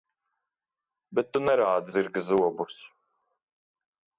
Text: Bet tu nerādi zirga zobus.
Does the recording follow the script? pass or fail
pass